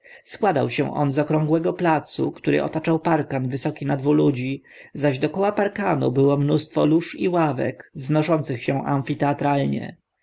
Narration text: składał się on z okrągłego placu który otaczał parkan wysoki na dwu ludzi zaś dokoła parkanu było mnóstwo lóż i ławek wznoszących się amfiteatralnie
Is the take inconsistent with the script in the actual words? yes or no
no